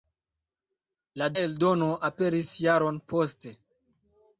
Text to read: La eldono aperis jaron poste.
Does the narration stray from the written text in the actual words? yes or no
no